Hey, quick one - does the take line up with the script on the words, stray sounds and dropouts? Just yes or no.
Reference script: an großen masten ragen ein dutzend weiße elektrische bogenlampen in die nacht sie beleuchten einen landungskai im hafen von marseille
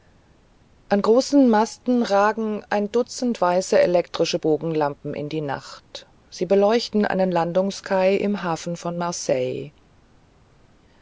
yes